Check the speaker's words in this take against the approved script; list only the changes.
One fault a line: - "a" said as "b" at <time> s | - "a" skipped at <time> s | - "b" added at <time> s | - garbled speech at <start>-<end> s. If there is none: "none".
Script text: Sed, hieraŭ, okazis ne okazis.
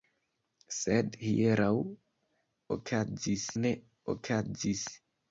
none